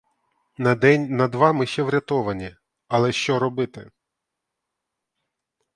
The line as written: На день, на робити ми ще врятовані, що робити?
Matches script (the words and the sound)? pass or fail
fail